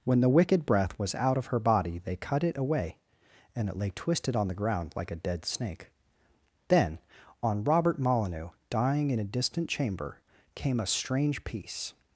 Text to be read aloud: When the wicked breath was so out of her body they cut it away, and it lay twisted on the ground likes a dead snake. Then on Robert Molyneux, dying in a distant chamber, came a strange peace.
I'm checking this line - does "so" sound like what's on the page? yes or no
no